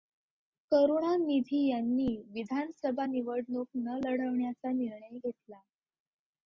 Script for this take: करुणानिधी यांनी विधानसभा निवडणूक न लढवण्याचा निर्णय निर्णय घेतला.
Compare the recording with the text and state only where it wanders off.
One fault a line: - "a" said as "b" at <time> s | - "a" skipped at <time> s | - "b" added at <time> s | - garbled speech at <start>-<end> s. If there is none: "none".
- "निर्णय" skipped at 5.2 s